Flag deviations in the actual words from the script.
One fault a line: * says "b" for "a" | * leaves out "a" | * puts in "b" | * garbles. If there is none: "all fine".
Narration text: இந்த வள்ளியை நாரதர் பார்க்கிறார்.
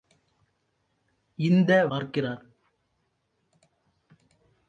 * leaves out "வள்ளியை நாரதர்"